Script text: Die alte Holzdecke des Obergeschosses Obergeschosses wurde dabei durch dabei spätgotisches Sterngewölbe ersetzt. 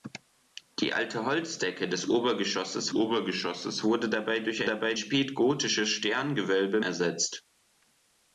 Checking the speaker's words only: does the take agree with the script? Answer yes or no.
yes